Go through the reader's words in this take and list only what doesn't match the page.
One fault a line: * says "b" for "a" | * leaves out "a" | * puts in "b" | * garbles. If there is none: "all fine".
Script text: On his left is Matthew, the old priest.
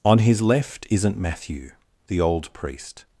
* says "isn't" for "is"